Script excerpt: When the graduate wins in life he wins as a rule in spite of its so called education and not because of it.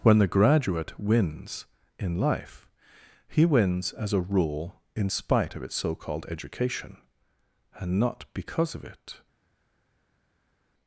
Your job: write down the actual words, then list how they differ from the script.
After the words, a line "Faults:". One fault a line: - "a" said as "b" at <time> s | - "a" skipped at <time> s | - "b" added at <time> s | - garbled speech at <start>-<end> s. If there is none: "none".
When the graduate wins in life he wins as a rule in spite of its so called education and not because of it.
Faults:
none